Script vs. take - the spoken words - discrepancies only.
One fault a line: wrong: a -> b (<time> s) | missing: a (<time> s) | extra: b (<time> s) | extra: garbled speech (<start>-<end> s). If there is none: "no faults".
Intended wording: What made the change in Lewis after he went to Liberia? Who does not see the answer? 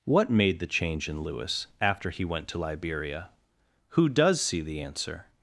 missing: not (4.4 s)